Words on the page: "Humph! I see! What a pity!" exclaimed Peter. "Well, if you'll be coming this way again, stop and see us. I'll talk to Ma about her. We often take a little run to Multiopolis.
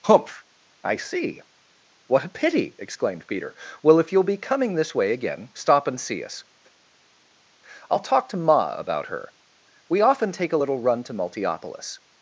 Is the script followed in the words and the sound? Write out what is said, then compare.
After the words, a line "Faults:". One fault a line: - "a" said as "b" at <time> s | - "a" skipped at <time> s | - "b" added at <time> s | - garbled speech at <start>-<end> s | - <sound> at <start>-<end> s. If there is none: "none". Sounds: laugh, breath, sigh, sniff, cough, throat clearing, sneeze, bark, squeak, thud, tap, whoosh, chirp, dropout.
"Humph! I see! What a pity!" exclaimed Peter. "Well, if you'll be coming this way again, stop and see us. I'll talk to Ma about her. We often take a little run to Multiopolis.
Faults:
none